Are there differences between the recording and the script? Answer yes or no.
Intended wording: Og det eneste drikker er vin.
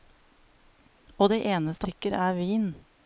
no